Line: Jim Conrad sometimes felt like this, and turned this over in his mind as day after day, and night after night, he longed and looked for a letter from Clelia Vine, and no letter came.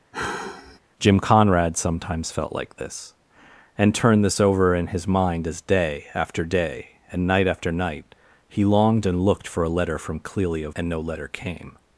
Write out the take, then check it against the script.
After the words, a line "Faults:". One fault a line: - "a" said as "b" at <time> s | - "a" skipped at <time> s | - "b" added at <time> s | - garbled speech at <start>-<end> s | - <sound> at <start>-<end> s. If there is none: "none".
Jim Conrad sometimes felt like this, and turned this over in his mind as day after day, and night after night, he longed and looked for a letter from Clelia And no letter came.
Faults:
- sigh at 0.1-0.8 s
- "Vine" skipped at 10.7 s